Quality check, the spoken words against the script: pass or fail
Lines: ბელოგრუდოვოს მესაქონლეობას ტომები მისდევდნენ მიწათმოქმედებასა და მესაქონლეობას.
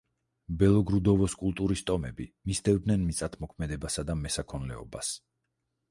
fail